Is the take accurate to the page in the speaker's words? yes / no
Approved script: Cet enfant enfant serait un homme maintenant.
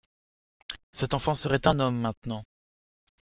no